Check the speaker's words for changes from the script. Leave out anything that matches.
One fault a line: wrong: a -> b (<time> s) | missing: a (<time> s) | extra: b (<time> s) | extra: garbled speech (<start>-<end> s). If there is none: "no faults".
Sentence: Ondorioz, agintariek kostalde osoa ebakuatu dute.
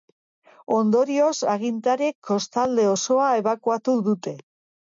no faults